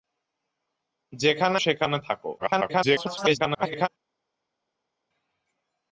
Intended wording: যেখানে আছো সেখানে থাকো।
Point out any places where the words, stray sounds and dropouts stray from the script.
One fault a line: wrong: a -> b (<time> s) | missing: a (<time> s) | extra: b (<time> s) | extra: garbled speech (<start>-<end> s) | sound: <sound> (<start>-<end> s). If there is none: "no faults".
missing: আছো (1.6 s)
extra: garbled speech (2.4-3.9 s)